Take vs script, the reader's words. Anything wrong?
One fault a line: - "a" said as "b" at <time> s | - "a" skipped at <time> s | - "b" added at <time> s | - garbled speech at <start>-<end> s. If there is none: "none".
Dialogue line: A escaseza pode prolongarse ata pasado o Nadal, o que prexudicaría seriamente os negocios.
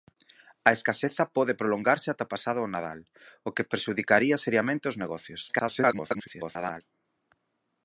- garbled speech at 5.5-6.8 s